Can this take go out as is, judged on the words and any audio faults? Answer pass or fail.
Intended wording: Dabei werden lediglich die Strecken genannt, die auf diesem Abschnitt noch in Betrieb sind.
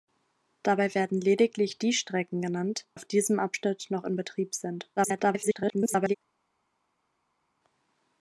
fail